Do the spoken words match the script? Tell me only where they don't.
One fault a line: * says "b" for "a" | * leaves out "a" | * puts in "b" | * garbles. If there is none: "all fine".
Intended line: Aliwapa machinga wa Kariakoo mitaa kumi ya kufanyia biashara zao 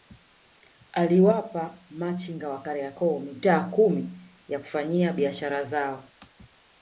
all fine